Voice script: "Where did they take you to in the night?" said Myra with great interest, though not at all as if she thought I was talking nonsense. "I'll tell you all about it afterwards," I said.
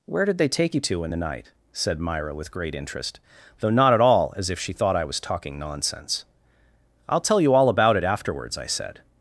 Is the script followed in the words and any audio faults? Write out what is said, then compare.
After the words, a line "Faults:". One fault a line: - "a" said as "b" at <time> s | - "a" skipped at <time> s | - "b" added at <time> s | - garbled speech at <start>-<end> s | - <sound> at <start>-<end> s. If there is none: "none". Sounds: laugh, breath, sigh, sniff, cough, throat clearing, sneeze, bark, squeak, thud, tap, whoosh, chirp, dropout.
"Where did they take you to in the night?" said Myra with great interest, though not at all as if she thought I was talking nonsense. "I'll tell you all about it afterwards," I said.
Faults:
none